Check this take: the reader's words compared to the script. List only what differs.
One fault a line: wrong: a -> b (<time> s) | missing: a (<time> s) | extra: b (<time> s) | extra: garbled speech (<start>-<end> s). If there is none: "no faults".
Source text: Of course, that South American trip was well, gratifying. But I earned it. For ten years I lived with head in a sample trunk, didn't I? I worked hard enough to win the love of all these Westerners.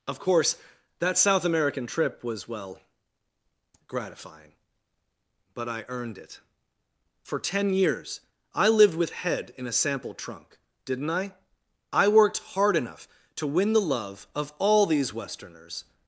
no faults